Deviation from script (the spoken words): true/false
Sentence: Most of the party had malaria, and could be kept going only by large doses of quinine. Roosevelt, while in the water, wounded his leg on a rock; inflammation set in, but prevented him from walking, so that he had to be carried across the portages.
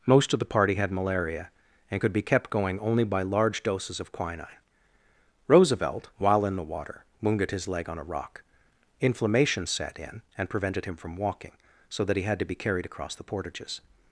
true